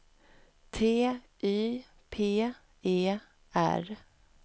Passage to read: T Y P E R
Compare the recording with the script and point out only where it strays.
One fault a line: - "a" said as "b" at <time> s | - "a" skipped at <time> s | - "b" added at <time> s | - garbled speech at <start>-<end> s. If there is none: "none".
none